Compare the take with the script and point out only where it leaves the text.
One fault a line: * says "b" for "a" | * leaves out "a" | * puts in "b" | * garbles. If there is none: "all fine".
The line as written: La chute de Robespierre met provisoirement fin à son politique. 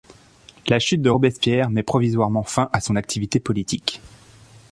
* puts in "activité"